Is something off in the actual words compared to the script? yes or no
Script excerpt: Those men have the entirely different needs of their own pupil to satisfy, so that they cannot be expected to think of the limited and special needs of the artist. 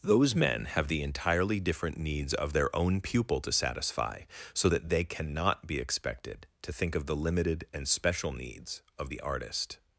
no